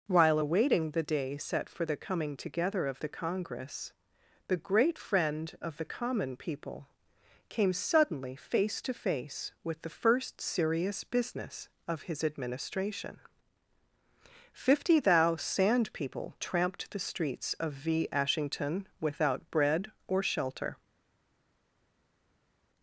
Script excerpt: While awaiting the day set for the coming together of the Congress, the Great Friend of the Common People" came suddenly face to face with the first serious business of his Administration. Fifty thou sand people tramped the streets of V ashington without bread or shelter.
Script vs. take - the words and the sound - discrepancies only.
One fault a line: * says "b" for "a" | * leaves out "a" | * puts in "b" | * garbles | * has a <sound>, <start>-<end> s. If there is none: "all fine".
all fine